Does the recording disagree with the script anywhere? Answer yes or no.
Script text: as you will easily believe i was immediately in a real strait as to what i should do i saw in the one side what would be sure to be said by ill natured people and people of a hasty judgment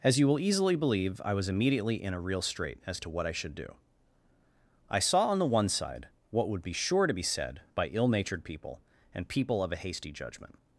yes